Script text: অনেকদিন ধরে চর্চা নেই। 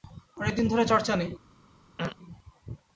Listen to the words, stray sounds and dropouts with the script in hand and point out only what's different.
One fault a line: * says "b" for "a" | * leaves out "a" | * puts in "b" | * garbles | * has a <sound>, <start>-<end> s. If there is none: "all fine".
* has a throat clearing, 2.0-2.2 s